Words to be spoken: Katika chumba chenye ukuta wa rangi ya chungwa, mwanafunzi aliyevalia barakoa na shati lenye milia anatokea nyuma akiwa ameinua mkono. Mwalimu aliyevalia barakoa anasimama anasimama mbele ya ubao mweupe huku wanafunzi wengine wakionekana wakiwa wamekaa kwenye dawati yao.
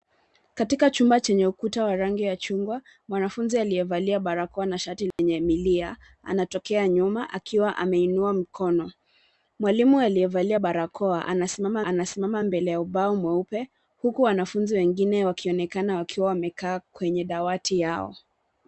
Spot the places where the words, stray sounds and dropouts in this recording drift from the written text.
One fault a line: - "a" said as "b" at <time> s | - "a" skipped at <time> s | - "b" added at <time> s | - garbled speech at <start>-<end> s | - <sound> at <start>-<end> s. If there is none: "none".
- dropout at 5.1-5.2 s